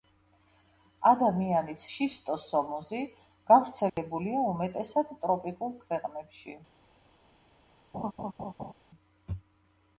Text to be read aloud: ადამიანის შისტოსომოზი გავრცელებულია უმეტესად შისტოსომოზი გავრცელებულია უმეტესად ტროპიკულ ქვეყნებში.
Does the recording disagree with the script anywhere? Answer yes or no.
yes